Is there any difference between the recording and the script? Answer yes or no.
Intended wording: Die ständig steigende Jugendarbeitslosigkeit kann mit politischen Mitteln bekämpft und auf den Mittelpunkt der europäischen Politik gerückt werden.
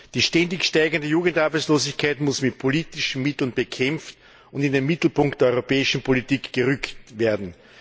yes